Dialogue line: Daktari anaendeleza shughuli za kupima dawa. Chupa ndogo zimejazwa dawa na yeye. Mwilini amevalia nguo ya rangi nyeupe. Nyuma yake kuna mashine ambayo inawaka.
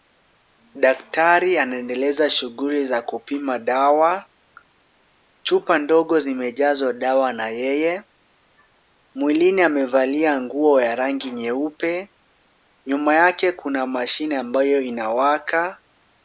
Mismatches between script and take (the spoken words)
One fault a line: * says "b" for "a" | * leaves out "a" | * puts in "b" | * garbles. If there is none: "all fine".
all fine